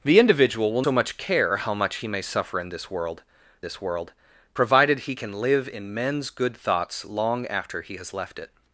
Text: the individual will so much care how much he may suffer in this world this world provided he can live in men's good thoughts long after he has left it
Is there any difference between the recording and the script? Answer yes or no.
no